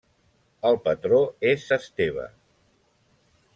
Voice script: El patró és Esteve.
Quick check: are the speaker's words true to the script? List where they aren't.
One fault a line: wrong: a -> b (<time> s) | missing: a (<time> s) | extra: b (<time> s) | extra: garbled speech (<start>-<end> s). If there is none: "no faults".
no faults